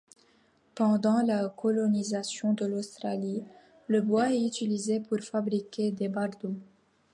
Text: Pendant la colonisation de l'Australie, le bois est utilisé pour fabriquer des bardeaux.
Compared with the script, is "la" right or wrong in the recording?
right